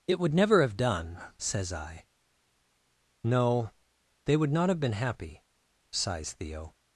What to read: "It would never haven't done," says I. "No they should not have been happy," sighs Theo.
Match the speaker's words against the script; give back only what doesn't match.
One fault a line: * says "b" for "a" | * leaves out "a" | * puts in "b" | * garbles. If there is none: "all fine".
* says "have" for "haven't"
* says "would" for "should"